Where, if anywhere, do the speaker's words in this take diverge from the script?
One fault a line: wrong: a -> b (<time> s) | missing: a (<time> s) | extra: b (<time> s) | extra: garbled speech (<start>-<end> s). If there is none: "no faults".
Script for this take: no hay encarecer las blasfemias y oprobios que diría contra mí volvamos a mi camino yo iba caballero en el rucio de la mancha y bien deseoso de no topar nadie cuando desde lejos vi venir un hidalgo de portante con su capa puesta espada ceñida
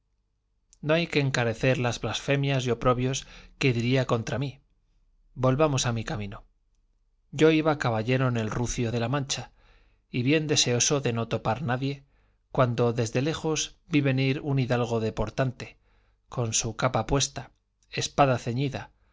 extra: que (1.1 s)